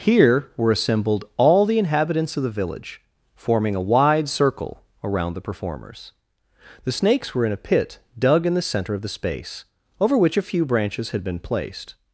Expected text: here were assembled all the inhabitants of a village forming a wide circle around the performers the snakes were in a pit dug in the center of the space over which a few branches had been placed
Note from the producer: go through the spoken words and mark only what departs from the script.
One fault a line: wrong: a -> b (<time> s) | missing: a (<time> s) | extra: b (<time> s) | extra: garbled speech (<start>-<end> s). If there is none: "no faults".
wrong: a -> the (2.4 s)